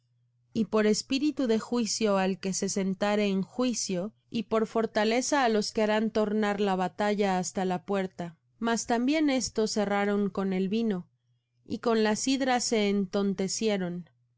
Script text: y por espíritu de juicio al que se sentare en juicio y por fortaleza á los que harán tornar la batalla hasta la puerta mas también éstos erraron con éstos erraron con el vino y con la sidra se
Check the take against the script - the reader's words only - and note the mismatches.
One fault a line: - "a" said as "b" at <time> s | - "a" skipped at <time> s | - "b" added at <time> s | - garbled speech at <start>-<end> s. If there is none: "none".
- "éstos erraron con" skipped at 10.5 s